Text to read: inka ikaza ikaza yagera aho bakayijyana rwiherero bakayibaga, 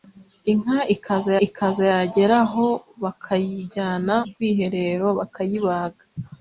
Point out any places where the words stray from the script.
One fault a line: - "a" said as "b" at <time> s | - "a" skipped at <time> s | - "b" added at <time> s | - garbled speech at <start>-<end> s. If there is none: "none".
none